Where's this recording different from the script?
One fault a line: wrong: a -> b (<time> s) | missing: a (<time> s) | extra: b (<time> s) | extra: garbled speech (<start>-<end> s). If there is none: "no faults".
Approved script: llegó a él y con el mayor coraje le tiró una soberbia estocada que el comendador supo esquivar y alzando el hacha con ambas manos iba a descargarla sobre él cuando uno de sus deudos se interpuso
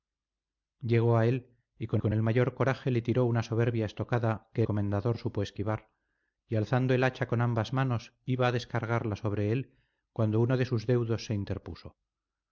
extra: con (2.0 s)
missing: el (4.6 s)